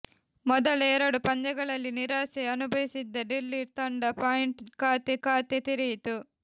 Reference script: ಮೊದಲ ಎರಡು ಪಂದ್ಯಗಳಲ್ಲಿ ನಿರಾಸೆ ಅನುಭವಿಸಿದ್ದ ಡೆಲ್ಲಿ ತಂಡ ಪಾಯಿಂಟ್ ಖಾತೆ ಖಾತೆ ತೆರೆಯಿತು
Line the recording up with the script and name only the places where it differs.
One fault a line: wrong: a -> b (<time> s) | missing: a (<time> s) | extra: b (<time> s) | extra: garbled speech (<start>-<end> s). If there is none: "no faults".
no faults